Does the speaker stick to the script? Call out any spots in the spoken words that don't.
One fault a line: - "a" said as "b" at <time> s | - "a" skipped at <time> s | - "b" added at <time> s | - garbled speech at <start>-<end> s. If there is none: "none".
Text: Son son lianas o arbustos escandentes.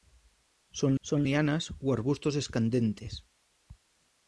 none